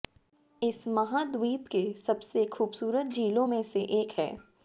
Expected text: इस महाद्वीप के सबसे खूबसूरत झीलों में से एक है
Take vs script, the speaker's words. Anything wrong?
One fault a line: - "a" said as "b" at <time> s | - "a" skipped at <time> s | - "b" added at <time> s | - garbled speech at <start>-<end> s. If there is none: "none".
none